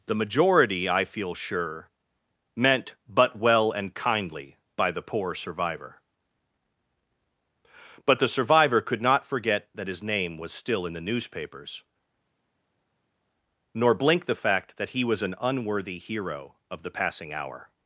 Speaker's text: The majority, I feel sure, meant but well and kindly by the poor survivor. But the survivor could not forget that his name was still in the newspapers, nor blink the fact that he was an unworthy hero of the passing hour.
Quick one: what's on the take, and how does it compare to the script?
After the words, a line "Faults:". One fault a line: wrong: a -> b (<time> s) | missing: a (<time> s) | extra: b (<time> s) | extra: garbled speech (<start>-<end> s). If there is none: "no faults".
The majority, I feel sure, meant but well and kindly by the poor survivor. But the survivor could not forget that his name was still in the newspapers, nor blink the fact that he was an unworthy hero of the passing hour.
Faults:
no faults